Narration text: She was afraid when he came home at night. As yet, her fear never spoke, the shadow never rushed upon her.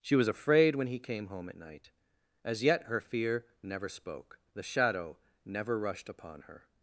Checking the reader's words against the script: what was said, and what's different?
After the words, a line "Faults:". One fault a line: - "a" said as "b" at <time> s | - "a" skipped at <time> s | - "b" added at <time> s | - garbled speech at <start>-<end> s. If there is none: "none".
She was afraid when he came home at night. As yet, her fear never spoke, the shadow never rushed upon her.
Faults:
none